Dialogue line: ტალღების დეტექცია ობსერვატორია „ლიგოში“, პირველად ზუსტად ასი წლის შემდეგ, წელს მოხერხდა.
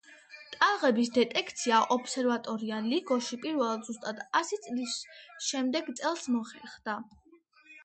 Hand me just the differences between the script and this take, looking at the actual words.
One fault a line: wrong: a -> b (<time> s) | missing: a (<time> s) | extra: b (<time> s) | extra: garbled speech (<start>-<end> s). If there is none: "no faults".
no faults